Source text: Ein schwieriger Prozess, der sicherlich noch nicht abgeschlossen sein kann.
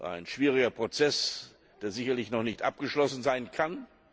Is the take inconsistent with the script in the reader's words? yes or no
no